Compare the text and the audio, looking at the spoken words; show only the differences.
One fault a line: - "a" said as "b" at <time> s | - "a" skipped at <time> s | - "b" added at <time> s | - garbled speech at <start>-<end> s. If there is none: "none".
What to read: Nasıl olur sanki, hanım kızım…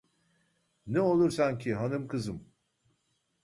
- "Nasıl" said as "Ne" at 0.9 s